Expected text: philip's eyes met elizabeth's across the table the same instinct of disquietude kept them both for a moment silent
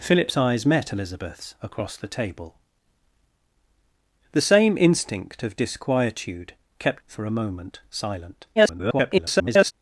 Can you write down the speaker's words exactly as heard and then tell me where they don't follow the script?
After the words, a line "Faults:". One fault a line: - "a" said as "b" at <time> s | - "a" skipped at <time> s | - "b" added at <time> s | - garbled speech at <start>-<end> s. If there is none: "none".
philip's eyes met elizabeth's across the table the same instinct of disquietude kept for a moment silent [garbled]
Faults:
- "them both" skipped at 7.0 s
- garbled speech at 8.6-9.7 s